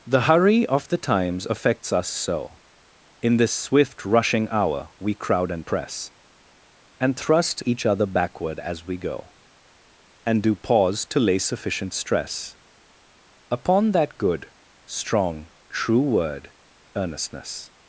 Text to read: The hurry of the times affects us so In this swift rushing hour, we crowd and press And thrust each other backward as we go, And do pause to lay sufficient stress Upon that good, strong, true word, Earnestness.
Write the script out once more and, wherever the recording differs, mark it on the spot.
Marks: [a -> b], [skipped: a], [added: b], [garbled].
The hurry of the times affects us so In this swift rushing hour, we crowd and press And thrust each other backward as we go, And do pause to lay sufficient stress Upon that good, strong, true word, Earnestness.